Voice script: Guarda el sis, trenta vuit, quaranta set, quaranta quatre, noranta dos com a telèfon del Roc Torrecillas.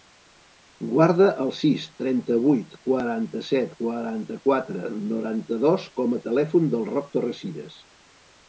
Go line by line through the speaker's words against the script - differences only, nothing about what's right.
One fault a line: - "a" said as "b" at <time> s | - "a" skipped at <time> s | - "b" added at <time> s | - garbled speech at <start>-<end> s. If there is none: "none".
none